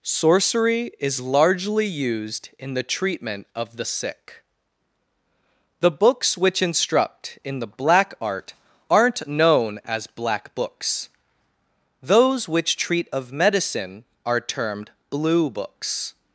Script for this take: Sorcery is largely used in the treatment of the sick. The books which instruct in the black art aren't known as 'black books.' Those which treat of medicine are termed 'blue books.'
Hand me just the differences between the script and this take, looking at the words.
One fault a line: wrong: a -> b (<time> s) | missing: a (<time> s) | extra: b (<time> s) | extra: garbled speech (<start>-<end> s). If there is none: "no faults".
no faults